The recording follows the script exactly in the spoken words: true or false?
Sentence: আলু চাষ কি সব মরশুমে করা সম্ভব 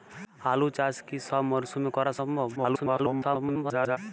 false